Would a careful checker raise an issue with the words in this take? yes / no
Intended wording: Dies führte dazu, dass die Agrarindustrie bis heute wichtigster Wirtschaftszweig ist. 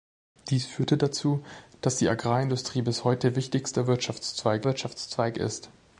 yes